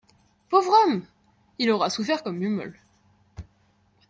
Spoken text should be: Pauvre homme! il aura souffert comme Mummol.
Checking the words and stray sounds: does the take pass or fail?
pass